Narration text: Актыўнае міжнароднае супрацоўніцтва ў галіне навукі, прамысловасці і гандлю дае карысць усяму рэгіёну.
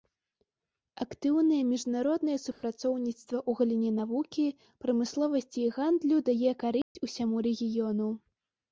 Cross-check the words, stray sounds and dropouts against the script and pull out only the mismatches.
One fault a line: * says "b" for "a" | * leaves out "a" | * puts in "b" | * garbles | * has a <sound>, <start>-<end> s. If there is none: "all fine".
* has a dropout, 2.5-2.6 s
* has a dropout, 6.8-7.0 s